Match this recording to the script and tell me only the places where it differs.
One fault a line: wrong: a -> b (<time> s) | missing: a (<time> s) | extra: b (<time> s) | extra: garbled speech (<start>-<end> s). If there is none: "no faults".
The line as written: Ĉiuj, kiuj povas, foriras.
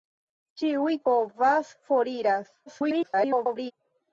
missing: kiuj (0.9 s)
extra: garbled speech (2.7-3.7 s)